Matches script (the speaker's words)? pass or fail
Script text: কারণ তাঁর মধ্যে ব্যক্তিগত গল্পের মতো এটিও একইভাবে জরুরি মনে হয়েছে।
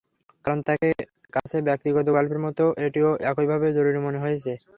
fail